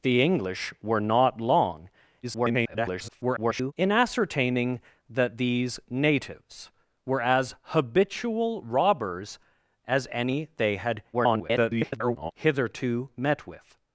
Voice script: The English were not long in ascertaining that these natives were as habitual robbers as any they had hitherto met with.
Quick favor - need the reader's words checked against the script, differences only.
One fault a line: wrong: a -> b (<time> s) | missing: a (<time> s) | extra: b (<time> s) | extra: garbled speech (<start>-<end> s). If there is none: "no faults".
extra: garbled speech (2.2-3.7 s)
extra: garbled speech (11.1-12.3 s)